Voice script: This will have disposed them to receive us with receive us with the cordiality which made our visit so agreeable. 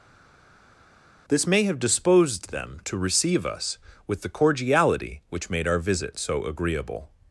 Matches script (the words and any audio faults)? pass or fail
fail